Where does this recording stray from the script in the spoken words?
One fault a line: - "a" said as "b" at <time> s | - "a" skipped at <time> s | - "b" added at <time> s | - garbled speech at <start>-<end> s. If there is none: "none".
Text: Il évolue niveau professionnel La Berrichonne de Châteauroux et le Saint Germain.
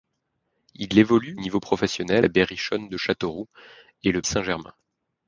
none